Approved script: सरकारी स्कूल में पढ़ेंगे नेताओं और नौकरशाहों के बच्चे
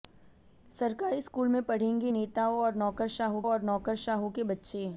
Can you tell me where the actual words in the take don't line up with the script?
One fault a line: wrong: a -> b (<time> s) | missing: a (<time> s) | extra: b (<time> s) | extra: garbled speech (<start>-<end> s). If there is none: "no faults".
extra: और नौकरशाहों (3.5 s)